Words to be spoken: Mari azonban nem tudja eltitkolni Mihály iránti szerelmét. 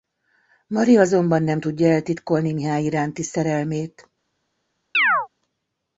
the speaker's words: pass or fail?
pass